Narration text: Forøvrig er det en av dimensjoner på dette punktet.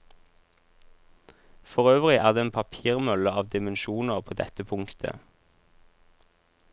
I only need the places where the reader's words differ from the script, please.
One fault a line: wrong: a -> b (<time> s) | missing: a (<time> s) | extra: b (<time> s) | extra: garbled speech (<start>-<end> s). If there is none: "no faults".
extra: papirmølle (2.6 s)